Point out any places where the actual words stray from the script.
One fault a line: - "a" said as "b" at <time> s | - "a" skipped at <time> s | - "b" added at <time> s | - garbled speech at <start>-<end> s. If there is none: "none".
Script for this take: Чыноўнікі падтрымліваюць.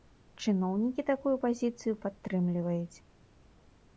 - "такую пазіцыю" added at 1.1 s